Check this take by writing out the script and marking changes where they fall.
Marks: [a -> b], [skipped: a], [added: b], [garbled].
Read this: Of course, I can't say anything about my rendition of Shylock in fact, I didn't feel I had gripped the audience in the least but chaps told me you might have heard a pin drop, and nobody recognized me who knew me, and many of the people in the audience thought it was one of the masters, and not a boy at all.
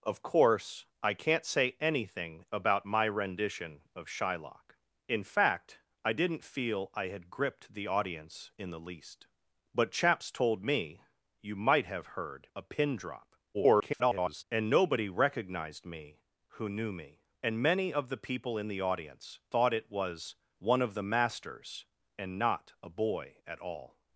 Of course, I can't say anything about my rendition of Shylock in fact, I didn't feel I had gripped the audience in the least but chaps told me you might have heard a pin drop, [garbled] and nobody recognized me who knew me, and many of the people in the audience thought it was one of the masters, and not a boy at all.